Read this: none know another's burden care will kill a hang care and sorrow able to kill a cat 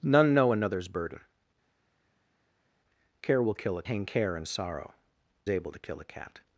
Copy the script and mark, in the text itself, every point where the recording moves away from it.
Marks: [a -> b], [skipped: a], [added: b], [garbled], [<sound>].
none know another's burden care will kill a hang care and sorrow able to kill a cat